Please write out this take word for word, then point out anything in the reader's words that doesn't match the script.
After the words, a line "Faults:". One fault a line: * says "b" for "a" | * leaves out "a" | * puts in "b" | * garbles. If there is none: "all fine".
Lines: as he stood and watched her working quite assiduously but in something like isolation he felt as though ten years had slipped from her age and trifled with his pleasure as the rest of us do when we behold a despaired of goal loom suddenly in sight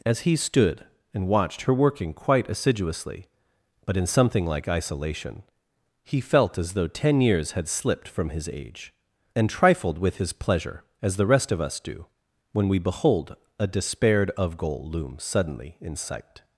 as he stood and watched her working quite assiduously but in something like isolation he felt as though ten years had slipped from his age and trifled with his pleasure as the rest of us do when we behold a despaired of goal loom suddenly in sight
Faults:
* says "his" for "her"